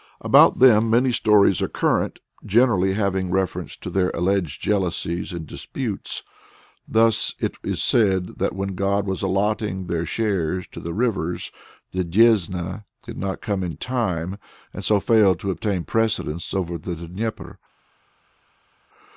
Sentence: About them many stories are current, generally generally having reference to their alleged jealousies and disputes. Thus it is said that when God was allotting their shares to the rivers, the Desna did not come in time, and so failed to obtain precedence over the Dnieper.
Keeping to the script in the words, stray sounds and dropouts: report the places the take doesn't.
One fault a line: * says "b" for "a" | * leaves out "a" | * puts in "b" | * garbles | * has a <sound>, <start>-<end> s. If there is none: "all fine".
* leaves out "generally"